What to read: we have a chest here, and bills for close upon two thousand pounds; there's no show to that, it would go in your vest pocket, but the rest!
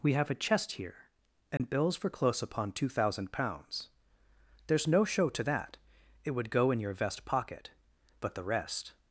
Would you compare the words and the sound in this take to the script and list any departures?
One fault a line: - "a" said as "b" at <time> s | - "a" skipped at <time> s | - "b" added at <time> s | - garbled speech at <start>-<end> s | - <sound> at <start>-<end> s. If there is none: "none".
- dropout at 1.6-1.6 s